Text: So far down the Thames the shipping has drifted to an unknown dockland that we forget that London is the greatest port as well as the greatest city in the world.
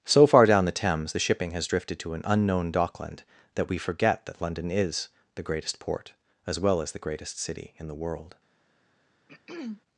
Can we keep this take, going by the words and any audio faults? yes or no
no